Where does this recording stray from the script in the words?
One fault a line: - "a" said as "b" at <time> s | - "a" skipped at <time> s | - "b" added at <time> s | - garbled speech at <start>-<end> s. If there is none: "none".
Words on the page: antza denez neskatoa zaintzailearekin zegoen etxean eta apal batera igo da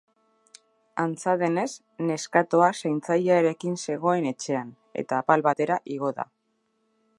none